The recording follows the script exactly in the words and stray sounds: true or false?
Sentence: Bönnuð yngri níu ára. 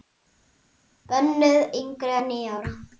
false